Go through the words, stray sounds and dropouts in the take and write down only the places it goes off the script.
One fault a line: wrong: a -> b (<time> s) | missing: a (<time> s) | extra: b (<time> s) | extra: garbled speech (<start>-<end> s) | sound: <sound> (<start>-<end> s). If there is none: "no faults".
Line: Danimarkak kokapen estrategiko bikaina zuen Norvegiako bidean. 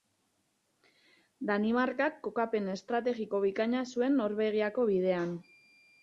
no faults